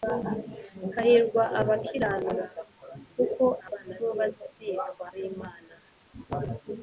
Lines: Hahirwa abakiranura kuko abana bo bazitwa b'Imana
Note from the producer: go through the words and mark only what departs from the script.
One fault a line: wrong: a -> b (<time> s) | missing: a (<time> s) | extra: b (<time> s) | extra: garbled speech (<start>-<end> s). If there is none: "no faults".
no faults